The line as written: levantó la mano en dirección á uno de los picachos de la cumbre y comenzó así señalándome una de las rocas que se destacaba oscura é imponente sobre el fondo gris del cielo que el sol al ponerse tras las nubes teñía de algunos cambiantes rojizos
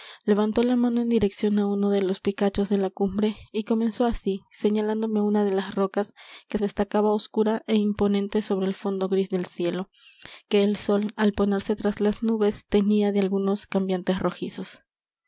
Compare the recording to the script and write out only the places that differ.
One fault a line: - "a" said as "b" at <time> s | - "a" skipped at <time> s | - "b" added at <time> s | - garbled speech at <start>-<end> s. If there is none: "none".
- "se" skipped at 6.6 s